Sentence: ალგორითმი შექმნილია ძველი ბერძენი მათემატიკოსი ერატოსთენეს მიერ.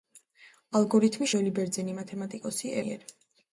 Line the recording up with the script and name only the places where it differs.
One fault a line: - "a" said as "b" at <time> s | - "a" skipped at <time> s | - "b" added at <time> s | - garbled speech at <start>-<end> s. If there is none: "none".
- "შექმნილია" skipped at 1.3 s
- "ერატოსთენეს" skipped at 2.7 s